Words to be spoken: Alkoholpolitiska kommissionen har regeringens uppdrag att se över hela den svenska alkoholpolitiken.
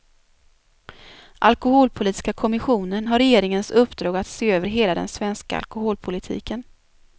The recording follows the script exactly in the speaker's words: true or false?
true